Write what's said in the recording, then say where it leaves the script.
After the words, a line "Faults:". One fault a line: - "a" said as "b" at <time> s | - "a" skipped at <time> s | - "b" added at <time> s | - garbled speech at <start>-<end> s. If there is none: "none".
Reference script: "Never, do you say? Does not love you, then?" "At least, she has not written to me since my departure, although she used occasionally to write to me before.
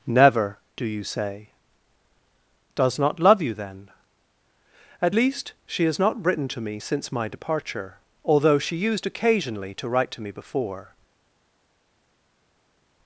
"Never, do you say? Does not love you, then?" "At least, she has not written to me since my departure, although she used occasionally to write to me before.
Faults:
none